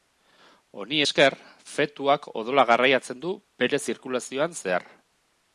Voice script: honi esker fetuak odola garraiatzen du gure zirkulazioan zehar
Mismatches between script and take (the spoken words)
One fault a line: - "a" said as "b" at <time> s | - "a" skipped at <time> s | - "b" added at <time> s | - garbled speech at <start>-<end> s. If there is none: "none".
- "gure" said as "bere" at 3.6 s